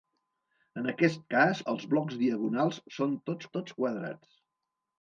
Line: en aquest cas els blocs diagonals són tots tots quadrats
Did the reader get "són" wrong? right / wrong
right